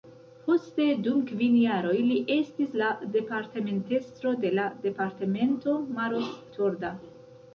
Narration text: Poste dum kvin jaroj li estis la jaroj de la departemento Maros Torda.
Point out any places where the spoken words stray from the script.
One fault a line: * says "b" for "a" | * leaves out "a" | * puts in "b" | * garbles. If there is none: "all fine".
* says "departementestro" for "jaroj"